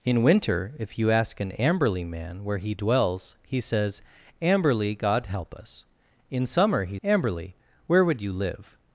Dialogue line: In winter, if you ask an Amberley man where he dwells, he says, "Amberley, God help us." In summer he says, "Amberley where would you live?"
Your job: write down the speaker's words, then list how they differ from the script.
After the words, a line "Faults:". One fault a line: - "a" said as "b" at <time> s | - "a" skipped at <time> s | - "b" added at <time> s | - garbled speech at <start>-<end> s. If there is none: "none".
In winter, if you ask an Amberley man where he dwells, he says, "Amberley, God help us." In summer he "Amberley where would you live?"
Faults:
- "says" skipped at 7.0 s